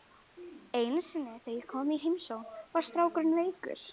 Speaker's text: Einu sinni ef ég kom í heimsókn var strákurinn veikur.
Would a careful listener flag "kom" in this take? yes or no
no